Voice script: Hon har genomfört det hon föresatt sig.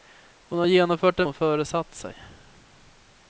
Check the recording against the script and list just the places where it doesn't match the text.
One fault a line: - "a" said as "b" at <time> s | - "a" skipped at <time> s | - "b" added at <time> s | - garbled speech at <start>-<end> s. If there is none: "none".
none